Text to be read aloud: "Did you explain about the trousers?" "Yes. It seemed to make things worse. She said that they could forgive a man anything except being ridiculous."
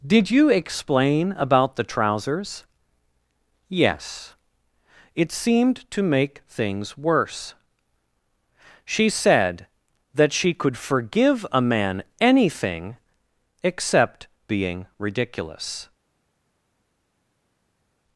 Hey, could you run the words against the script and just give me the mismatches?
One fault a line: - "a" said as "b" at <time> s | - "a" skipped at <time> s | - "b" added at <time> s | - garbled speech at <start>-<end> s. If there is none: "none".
- "they" said as "she" at 10.3 s